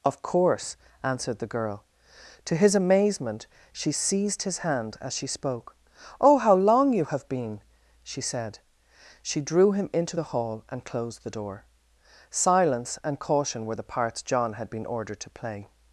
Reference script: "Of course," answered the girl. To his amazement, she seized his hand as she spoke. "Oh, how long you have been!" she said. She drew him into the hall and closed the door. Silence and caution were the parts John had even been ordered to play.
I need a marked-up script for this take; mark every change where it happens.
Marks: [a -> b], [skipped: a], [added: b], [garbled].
"Of course," answered the girl. To his amazement, she seized his hand as she spoke. "Oh, how long you have been!" she said. She drew him into the hall and closed the door. Silence and caution were the parts John had [skipped: even] been ordered to play.